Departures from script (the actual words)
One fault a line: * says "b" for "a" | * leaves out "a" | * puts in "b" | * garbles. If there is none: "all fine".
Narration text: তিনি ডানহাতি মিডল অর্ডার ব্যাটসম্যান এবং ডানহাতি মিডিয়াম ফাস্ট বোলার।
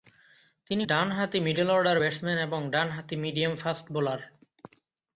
all fine